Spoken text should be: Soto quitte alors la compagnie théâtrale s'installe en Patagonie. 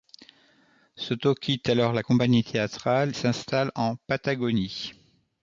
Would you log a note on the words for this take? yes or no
no